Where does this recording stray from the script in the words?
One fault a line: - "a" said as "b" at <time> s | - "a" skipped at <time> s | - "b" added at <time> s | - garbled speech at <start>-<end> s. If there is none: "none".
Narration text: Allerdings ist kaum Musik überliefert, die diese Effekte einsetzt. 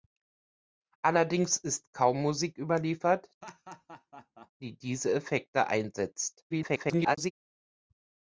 - garbled speech at 6.5-7.3 s